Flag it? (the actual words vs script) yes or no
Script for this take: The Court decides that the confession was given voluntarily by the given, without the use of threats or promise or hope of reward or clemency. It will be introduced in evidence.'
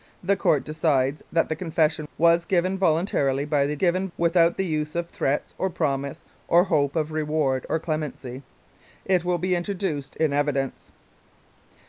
no